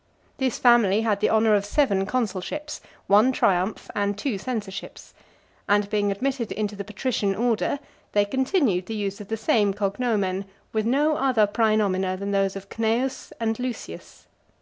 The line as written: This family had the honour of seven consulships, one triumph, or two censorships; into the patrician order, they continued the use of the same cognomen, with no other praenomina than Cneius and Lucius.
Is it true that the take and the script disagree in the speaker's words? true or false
true